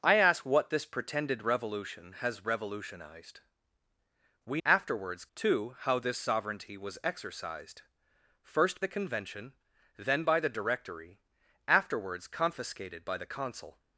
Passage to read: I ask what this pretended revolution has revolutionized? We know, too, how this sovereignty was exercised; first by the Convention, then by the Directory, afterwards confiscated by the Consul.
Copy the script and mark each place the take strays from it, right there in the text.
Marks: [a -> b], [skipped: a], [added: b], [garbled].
I ask what this pretended revolution has revolutionized? We [know, -> afterwards] too, how this sovereignty was exercised; first [skipped: by] the Convention, then by the Directory, afterwards confiscated by the Consul.